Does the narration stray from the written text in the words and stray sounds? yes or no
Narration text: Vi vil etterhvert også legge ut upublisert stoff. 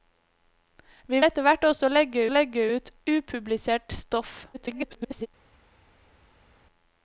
yes